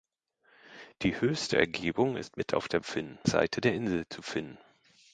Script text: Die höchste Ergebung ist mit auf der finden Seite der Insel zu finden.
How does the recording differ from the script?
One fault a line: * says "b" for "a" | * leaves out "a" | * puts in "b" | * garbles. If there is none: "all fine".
all fine